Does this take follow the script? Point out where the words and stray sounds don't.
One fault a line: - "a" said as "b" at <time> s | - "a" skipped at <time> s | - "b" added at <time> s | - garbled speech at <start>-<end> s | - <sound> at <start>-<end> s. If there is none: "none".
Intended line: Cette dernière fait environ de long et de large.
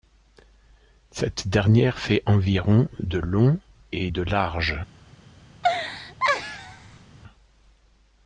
- laugh at 5.6-7.1 s